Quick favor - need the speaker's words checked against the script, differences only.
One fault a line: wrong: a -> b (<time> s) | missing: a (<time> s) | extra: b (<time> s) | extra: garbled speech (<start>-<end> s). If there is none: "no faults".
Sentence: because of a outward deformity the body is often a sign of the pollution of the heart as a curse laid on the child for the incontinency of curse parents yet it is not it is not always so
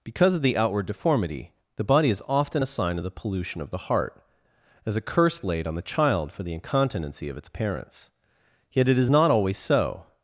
wrong: a -> the (0.4 s)
wrong: curse -> its (7.4 s)
missing: it is not (9.3 s)